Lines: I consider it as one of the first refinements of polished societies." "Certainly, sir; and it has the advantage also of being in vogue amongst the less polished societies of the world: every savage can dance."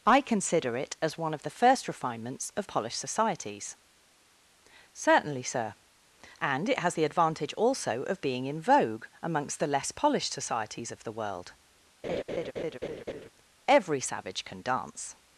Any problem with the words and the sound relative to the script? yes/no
yes